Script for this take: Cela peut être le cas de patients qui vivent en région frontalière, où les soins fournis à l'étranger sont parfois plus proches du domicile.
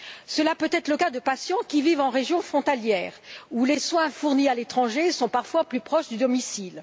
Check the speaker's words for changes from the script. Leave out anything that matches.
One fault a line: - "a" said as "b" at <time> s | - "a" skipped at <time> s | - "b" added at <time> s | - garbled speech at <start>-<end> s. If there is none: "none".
none